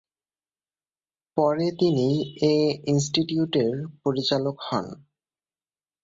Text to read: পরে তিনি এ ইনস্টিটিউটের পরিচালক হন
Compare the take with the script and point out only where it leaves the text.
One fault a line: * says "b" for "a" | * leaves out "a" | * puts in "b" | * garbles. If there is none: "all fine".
all fine